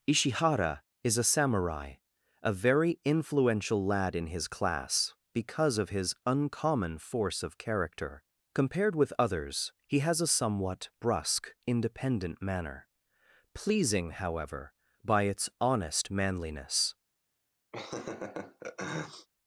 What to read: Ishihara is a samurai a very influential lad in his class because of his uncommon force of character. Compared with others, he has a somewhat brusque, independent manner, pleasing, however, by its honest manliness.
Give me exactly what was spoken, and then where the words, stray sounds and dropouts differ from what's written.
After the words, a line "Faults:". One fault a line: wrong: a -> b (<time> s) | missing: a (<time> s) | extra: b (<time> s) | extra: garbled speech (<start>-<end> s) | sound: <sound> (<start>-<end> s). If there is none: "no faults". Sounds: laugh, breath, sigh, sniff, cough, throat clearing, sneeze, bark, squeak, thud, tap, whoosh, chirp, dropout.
Ishihara is a samurai a very influential lad in his class because of his uncommon force of character. Compared with others, he has a somewhat brusque, independent manner, pleasing, however, by its honest manliness.
Faults:
sound: laugh (17.7-19.3 s)